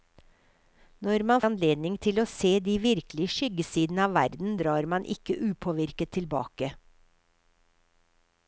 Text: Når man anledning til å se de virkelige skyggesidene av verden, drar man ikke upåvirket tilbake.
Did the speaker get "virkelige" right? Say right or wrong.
right